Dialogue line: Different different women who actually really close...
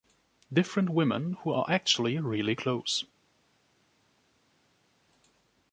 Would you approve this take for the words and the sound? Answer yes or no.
no